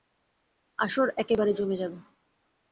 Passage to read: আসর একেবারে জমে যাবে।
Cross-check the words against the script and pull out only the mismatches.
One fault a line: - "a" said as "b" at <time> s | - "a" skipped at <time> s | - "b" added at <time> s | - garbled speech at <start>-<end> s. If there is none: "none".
none